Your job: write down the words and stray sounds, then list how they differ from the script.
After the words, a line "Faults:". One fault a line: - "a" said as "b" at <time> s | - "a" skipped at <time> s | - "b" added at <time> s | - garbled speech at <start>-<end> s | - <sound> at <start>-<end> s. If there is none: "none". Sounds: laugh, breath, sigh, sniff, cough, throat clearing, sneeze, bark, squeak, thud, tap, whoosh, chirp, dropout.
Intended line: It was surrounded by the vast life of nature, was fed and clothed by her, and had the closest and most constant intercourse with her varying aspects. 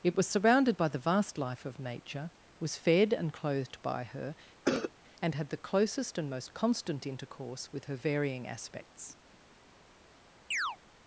It was surrounded by the vast life of nature, was fed and clothed by her, and had the closest and most constant intercourse with her varying aspects.
Faults:
- cough at 4.6-4.9 s
- chirp at 10.5-10.8 s